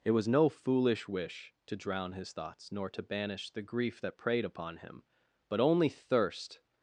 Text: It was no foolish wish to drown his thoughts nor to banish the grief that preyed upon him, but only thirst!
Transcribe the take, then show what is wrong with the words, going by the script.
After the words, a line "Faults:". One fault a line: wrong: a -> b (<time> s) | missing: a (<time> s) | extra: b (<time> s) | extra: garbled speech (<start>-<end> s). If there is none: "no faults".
It was no foolish wish to drown his thoughts nor to banish the grief that preyed upon him, but only thirst!
Faults:
no faults